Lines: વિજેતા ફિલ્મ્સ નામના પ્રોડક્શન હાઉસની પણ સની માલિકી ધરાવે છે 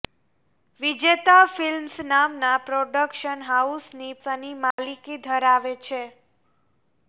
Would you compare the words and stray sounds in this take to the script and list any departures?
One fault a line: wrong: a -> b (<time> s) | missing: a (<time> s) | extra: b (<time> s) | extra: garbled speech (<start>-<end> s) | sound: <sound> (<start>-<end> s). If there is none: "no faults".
missing: પણ (4.1 s)
sound: dropout (4.7-4.8 s)